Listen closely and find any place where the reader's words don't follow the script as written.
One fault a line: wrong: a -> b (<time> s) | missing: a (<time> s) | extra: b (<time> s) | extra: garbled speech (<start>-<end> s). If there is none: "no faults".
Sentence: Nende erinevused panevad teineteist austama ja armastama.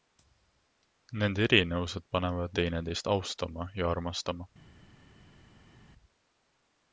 no faults